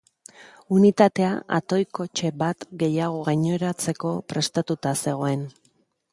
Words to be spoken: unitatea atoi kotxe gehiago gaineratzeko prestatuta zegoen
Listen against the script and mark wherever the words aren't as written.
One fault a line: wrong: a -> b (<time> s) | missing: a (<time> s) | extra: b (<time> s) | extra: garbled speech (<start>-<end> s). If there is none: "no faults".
extra: bat (2.4 s)